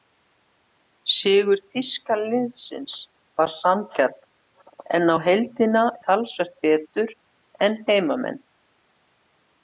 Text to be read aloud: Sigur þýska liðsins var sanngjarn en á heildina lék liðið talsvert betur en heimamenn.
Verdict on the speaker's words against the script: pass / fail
fail